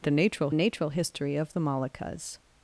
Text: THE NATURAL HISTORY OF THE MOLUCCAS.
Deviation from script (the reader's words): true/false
true